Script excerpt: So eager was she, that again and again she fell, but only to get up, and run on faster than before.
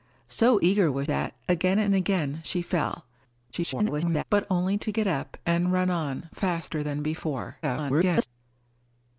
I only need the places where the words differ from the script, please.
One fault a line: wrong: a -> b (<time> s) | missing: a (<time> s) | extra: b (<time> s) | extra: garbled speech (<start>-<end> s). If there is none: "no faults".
missing: she (1.1 s)
extra: garbled speech (3.5-4.2 s)
extra: garbled speech (7.6-8.3 s)